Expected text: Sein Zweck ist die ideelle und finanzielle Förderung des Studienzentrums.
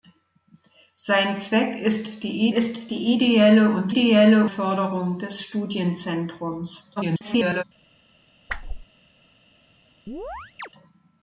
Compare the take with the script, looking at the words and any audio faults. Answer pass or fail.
fail